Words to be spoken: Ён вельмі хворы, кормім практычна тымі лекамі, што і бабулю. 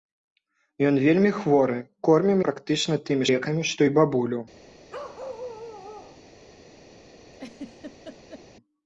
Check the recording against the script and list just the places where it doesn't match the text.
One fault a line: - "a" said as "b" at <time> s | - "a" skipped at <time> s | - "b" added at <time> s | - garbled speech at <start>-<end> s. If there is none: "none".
none